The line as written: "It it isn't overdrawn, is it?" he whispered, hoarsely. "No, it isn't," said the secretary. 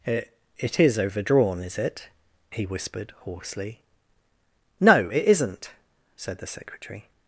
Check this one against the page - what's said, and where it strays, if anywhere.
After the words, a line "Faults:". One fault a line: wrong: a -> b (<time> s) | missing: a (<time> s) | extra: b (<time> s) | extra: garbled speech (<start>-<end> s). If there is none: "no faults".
"It it is overdrawn, is it?" he whispered, hoarsely. "No, it isn't," said the secretary.
Faults:
wrong: isn't -> is (0.8 s)